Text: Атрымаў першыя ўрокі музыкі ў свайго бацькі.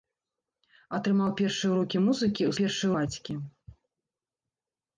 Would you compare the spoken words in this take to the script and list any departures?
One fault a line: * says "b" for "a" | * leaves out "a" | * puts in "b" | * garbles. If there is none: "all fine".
* says "першыя" for "свайго"